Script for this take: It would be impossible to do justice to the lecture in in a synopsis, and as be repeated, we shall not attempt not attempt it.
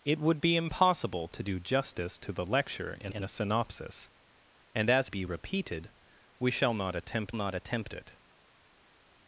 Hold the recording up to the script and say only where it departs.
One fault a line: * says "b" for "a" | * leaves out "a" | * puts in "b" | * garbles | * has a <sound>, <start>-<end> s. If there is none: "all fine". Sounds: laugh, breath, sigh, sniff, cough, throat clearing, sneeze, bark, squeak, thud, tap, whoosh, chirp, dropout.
all fine